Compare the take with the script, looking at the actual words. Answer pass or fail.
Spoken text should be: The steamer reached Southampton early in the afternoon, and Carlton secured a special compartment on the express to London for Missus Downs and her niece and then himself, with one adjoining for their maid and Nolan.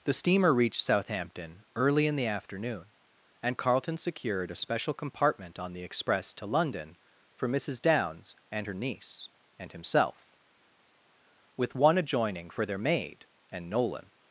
fail